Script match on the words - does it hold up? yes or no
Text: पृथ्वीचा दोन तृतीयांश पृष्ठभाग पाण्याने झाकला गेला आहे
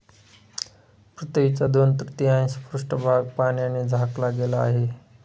yes